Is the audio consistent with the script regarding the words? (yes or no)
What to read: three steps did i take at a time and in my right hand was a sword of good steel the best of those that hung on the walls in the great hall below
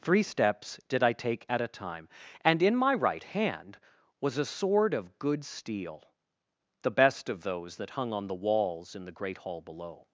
yes